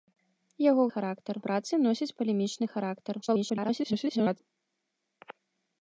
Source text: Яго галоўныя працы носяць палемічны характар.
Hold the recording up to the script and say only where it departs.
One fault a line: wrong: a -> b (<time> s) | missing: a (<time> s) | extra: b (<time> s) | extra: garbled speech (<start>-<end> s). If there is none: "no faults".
wrong: галоўныя -> характар (0.9 s)
extra: garbled speech (3.2-4.4 s)